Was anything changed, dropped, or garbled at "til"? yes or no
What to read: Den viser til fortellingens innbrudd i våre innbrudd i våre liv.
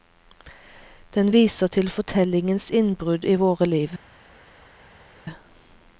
no